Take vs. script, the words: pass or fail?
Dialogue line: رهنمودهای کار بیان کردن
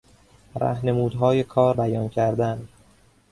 pass